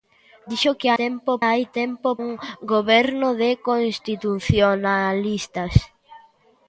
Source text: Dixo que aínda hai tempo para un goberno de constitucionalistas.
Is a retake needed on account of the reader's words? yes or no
yes